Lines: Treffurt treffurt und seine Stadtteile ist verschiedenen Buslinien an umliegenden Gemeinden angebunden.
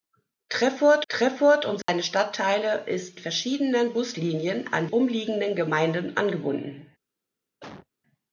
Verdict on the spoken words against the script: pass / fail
pass